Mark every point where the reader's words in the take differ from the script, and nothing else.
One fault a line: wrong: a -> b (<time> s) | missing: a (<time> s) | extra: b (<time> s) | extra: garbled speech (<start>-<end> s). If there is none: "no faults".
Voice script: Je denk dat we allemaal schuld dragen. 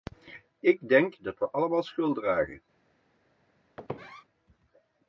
wrong: Je -> Ik (0.6 s)